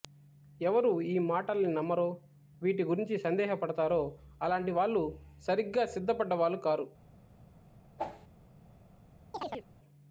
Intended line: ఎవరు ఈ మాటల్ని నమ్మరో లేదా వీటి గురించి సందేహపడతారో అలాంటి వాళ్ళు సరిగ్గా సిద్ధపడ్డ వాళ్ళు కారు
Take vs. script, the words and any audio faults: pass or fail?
fail